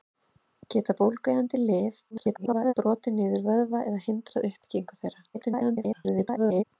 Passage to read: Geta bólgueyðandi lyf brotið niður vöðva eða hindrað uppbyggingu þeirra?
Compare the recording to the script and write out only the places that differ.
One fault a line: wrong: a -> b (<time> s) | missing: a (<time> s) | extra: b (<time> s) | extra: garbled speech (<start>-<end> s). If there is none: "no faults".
extra: garbled speech (2.1-2.7 s)
extra: garbled speech (5.3-6.6 s)